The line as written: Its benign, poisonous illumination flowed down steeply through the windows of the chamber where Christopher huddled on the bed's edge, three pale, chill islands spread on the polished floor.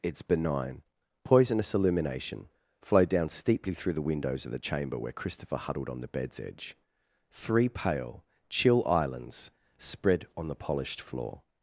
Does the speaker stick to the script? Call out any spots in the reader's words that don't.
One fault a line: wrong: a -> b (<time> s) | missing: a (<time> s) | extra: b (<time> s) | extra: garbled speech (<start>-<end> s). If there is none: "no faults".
no faults